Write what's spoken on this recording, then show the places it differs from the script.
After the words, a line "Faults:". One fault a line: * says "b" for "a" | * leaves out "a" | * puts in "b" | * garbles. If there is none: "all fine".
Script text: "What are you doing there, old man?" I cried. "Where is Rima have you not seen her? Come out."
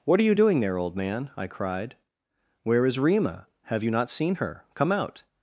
"What are you doing there, old man?" I cried. "Where is Rima have you not seen her? Come out."
Faults:
all fine